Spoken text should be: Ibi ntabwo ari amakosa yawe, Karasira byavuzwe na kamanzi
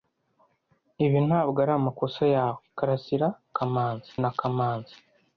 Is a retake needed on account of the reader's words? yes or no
yes